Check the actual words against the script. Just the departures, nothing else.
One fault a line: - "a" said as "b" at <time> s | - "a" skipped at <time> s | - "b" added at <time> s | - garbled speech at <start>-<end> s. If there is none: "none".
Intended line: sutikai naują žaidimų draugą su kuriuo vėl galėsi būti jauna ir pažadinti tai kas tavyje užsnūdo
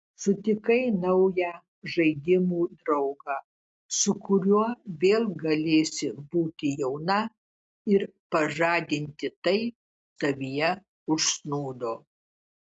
- "kas" skipped at 9.6 s